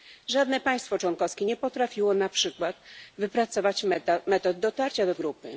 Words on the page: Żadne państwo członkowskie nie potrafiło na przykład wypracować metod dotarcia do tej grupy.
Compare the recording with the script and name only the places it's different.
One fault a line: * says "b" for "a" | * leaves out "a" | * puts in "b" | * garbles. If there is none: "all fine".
* leaves out "tej"